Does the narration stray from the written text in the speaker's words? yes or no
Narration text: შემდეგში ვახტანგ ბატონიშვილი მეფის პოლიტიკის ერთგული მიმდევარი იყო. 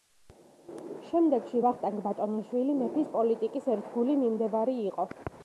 no